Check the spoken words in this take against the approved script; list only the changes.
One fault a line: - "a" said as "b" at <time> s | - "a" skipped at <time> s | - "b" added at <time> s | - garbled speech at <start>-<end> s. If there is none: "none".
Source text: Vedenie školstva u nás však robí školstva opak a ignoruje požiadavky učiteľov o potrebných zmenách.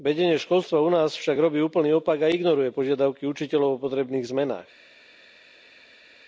- "školstva" said as "úplný" at 1.6 s